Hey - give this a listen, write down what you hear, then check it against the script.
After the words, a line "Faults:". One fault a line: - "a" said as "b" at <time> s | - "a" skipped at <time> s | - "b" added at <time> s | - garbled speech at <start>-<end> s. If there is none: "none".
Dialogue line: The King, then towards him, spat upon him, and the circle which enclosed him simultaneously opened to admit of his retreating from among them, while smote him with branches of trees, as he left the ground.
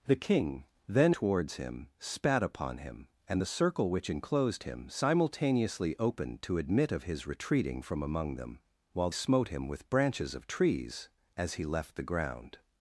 The King, then towards him, spat upon him, and the circle which enclosed him simultaneously opened to admit of his retreating from among them, while smote him with branches of trees, as he left the ground.
Faults:
none